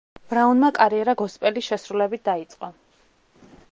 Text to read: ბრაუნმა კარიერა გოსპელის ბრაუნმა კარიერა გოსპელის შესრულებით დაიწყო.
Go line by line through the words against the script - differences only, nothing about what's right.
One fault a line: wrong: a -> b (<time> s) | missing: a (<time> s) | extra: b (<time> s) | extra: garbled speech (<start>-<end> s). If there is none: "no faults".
missing: ბრაუნმა კარიერა გოსპელის (1.7 s)